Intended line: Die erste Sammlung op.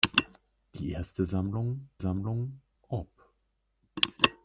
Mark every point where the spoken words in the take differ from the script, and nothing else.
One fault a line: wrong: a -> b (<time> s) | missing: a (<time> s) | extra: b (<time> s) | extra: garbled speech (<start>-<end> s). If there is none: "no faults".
extra: Sammlung (2.0 s)